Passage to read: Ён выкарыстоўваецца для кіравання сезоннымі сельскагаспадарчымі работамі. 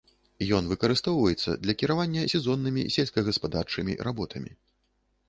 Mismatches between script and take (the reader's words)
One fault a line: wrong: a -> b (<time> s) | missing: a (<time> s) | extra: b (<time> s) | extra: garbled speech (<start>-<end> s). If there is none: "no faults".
no faults